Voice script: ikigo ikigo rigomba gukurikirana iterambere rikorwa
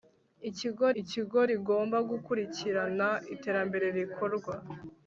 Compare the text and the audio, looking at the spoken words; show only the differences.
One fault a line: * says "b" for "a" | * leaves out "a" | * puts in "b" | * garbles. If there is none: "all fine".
all fine